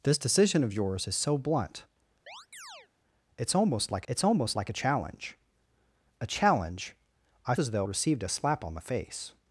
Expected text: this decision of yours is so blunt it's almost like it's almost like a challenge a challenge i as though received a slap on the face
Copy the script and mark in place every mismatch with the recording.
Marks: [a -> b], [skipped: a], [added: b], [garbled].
this decision of yours is so blunt it's almost like it's almost like a challenge a challenge i as though received a slap on the face